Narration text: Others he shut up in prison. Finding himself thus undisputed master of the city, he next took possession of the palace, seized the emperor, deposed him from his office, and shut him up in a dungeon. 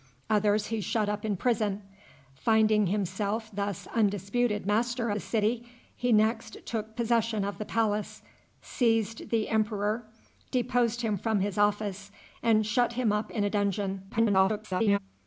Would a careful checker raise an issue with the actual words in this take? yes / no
yes